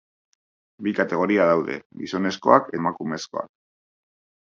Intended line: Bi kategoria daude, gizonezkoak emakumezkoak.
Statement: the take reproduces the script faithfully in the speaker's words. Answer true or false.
true